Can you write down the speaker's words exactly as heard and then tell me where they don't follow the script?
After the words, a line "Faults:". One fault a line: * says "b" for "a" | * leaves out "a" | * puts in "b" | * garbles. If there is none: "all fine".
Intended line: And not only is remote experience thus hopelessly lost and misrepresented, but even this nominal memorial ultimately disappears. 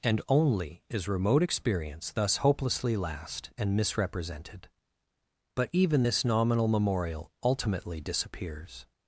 And only is remote experience thus hopelessly last and misrepresented, but even this nominal memorial ultimately disappears.
Faults:
* leaves out "not"
* says "last" for "lost"